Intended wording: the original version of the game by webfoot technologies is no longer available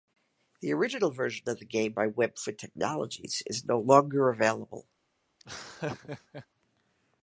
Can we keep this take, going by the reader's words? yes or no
yes